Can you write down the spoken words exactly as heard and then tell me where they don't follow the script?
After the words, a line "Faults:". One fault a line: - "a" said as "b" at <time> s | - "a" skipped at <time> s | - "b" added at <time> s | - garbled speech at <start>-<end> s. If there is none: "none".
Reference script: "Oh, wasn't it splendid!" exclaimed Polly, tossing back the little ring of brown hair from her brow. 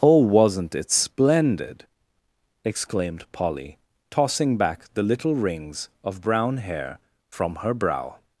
"Oh, wasn't it splendid!" exclaimed Polly, tossing back the little rings of brown hair from her brow.
Faults:
- "ring" said as "rings" at 5.3 s